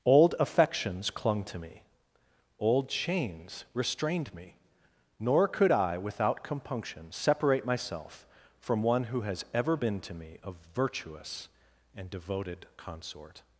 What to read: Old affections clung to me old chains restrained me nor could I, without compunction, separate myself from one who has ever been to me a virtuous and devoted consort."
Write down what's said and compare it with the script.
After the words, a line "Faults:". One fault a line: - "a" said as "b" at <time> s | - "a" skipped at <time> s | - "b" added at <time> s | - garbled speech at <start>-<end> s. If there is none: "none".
Old affections clung to me old chains restrained me nor could I, without compunction, separate myself from one who has ever been to me a virtuous and devoted consort."
Faults:
none